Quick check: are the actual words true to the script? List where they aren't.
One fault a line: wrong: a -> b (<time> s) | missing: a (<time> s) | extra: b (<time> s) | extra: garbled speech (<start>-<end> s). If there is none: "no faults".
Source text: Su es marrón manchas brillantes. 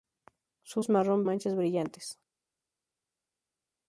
no faults